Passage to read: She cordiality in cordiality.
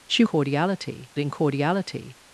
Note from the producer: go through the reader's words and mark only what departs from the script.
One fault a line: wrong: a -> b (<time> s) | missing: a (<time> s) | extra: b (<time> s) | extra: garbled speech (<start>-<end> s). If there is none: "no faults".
no faults